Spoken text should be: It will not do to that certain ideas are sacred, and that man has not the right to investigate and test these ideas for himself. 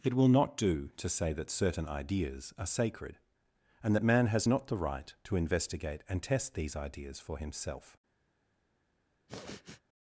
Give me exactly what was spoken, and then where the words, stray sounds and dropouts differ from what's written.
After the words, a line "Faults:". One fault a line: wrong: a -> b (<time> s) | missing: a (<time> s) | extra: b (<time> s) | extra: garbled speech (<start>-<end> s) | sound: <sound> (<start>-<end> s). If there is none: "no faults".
It will not do to say that certain ideas are sacred, and that man has not the right to investigate and test these ideas for himself.
Faults:
extra: say (1.1 s)
sound: sniff (9.3-9.8 s)